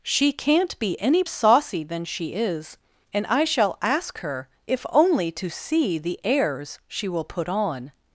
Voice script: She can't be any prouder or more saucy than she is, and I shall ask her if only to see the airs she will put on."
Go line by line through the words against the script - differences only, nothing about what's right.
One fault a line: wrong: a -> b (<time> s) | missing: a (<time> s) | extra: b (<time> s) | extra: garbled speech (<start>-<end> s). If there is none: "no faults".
missing: prouder or more (1.2 s)